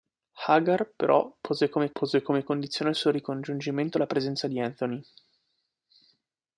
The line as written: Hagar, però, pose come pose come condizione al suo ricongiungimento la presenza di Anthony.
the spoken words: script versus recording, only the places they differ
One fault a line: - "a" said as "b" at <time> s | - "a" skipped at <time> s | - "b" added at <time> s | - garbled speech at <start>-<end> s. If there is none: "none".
none